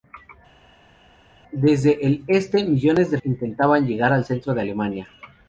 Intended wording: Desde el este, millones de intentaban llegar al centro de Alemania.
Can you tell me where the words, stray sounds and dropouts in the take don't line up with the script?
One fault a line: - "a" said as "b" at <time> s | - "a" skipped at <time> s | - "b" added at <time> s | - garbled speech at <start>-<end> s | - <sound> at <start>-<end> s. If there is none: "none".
none